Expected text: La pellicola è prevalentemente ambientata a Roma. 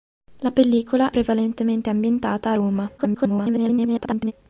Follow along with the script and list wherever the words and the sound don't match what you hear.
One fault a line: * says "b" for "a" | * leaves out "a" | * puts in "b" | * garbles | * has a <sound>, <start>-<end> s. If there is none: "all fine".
* leaves out "è"
* garbles